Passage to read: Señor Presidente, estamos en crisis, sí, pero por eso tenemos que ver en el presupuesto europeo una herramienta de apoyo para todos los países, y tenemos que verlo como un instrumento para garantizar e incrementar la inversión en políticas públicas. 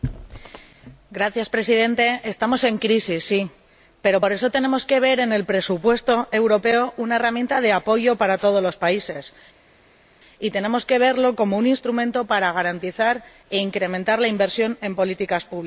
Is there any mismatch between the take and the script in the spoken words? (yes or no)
no